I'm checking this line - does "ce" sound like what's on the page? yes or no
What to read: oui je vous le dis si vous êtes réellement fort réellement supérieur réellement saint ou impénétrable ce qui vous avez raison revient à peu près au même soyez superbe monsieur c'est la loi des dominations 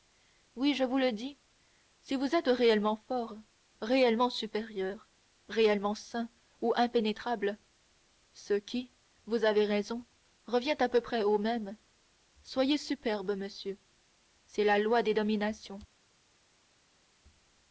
yes